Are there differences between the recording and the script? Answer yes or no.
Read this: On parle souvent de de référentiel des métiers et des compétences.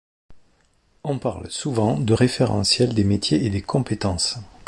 yes